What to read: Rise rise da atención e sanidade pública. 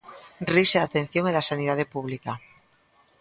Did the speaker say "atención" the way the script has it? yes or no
yes